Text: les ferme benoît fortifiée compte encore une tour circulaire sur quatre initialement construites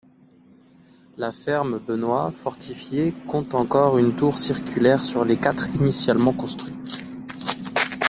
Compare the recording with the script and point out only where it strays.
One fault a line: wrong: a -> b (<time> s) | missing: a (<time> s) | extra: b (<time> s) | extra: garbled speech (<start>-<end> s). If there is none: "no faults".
wrong: les -> la (1.1 s)
extra: les (5.2 s)